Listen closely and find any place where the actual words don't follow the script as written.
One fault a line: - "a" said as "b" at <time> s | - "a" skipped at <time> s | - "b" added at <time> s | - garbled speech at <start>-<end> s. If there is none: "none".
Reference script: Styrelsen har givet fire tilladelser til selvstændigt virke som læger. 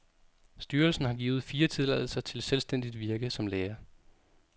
none